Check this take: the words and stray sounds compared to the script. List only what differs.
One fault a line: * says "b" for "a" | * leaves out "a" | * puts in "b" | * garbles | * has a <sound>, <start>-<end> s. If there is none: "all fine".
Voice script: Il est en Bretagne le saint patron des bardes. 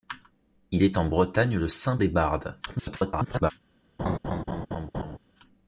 * leaves out "patron"
* garbles
* has a laugh, 4.0-5.2 s